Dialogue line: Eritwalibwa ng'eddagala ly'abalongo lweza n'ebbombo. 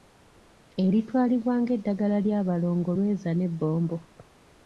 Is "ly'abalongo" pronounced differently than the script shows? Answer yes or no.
no